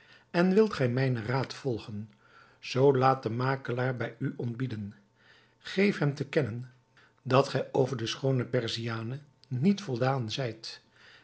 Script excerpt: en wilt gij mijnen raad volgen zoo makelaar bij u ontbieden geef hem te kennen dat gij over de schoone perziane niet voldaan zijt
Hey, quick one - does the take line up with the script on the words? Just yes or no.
no